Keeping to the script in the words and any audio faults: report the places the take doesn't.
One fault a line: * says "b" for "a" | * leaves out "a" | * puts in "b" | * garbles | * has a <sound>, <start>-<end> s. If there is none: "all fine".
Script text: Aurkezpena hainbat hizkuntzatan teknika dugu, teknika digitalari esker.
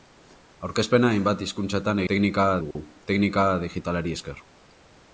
* has a dropout, 2.7-2.8 s